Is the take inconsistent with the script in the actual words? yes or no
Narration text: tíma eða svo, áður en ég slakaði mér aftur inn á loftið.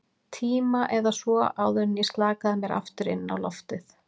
no